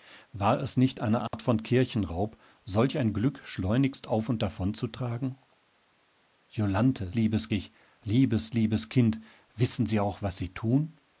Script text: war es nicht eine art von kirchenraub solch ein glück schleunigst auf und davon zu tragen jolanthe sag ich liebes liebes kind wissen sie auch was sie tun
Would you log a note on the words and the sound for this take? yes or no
yes